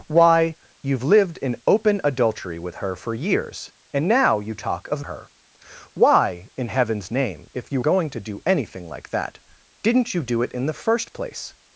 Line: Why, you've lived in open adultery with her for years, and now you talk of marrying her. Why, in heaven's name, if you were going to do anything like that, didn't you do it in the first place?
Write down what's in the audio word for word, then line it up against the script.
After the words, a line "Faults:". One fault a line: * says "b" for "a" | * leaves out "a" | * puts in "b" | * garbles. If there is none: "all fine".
Why, you've lived in open adultery with her for years, and now you talk of her. Why, in heaven's name, if you going to do anything like that, didn't you do it in the first place?
Faults:
* leaves out "marrying"
* leaves out "were"